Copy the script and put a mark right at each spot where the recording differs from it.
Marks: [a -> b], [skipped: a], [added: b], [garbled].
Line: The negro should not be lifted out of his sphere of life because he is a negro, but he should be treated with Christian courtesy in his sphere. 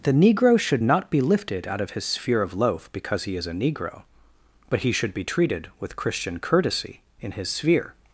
The negro should not be lifted out of his sphere of [life -> loaf] because he is a negro, but he should be treated with Christian courtesy in his sphere.